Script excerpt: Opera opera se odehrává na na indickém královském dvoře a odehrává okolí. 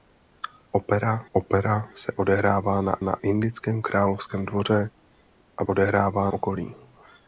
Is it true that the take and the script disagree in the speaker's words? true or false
false